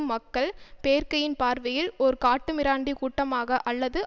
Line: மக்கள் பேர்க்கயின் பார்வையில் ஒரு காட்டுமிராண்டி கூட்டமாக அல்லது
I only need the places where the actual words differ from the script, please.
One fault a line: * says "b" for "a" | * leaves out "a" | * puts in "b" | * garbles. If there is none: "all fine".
all fine